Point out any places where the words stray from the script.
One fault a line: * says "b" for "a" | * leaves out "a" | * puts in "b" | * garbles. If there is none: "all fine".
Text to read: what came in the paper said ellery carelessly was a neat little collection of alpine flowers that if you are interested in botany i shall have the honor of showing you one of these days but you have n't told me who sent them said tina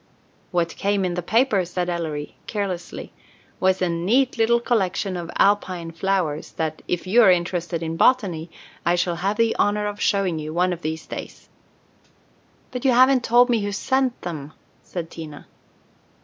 all fine